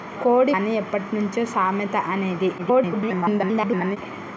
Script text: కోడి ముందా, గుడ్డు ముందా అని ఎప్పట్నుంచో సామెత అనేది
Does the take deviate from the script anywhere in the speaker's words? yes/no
yes